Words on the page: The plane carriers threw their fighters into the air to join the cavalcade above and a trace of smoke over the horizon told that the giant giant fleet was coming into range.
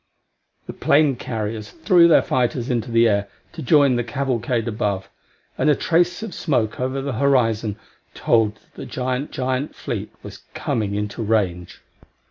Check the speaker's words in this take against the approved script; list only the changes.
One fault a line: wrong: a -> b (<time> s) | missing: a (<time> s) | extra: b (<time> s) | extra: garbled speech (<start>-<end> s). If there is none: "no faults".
no faults